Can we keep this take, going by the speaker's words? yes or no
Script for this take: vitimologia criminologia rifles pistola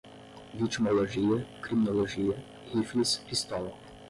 yes